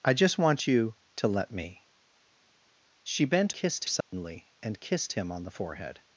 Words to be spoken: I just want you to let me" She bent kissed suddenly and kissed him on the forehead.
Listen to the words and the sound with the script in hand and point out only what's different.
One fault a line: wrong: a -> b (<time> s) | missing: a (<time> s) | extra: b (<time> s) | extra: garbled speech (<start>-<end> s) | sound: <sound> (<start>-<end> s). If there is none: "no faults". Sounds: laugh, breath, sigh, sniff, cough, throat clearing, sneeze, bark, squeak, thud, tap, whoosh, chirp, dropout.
sound: dropout (4.0-4.1 s)